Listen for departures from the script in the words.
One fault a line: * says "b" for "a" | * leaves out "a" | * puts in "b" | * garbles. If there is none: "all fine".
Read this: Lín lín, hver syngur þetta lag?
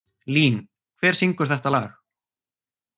* leaves out "lín"